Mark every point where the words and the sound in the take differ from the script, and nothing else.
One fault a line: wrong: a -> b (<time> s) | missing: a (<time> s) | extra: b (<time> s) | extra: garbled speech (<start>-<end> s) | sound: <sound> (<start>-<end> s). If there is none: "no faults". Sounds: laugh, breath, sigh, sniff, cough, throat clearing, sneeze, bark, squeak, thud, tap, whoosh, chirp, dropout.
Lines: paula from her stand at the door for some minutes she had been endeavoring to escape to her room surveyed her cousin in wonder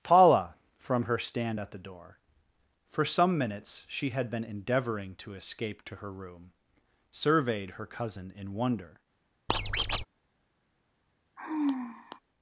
sound: squeak (9.5-10.1 s)
sound: sigh (11.4-12.2 s)